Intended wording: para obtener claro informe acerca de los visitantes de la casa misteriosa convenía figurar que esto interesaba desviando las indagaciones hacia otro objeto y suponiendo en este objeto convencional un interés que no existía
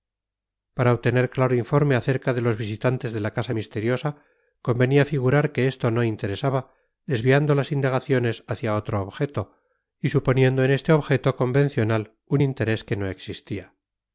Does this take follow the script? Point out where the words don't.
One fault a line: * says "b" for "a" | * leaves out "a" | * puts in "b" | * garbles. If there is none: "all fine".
* puts in "no"